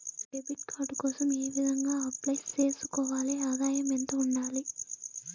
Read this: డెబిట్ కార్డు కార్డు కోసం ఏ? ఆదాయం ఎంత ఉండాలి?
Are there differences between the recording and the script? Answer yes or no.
yes